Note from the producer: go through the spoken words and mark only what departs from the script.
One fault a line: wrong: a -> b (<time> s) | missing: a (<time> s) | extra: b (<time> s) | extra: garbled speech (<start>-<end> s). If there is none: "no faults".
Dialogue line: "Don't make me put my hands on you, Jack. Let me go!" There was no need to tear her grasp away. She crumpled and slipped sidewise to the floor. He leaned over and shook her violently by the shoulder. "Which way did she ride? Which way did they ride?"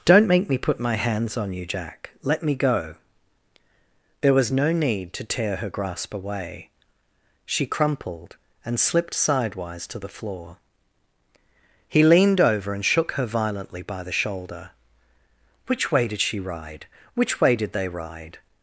no faults